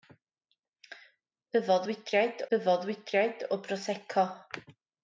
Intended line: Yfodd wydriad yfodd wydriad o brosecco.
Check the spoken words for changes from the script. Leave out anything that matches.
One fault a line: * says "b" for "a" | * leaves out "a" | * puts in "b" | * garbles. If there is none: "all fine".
all fine